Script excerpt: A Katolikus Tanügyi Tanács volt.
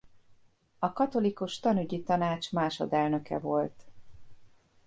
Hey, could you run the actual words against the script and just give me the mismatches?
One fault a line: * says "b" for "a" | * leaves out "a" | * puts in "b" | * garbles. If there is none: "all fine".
* puts in "másodelnöke"